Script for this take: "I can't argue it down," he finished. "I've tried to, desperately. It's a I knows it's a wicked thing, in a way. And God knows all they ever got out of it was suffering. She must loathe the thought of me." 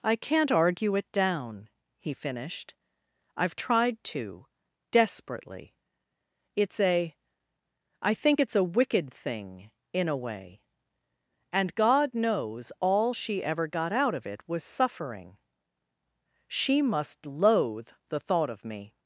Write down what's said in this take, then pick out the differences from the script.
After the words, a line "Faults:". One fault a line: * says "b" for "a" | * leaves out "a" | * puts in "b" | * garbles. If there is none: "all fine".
"I can't argue it down," he finished. "I've tried to, desperately. It's a I think it's a wicked thing, in a way. And God knows all she ever got out of it was suffering. She must loathe the thought of me."
Faults:
* says "think" for "knows"
* says "she" for "they"